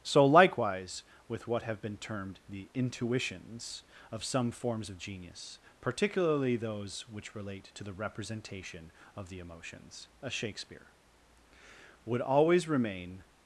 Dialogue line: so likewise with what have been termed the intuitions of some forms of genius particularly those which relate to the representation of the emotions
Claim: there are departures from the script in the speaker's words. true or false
true